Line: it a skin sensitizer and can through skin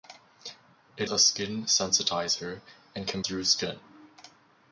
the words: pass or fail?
pass